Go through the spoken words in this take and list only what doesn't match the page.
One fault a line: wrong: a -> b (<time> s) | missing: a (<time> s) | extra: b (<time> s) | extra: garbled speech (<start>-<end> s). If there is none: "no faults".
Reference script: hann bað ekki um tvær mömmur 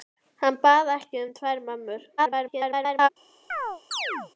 extra: garbled speech (2.2-3.1 s)